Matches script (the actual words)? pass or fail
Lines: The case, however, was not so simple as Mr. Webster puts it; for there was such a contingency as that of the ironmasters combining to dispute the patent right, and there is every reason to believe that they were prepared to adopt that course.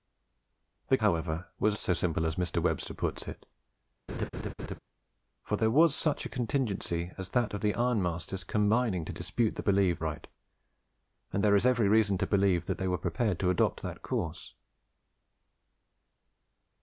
fail